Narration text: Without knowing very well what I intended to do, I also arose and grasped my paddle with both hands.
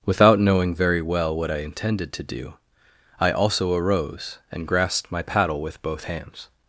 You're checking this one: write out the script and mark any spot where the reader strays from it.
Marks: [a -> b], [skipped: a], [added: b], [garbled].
Without knowing very well what I intended to do, I also arose and grasped my paddle with both hands.